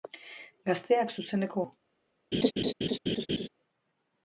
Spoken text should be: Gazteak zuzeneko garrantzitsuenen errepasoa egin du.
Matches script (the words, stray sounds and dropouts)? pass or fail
fail